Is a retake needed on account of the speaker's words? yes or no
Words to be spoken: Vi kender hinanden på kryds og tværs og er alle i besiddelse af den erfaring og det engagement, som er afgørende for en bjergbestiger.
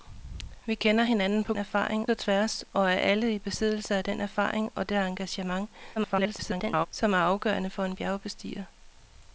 yes